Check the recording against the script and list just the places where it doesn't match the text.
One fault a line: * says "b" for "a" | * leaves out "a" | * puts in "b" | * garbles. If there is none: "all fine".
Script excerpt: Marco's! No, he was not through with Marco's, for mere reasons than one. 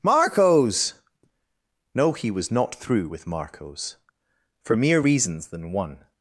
all fine